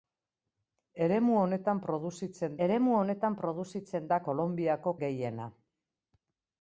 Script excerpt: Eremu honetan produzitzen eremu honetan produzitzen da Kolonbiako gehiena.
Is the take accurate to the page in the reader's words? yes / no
yes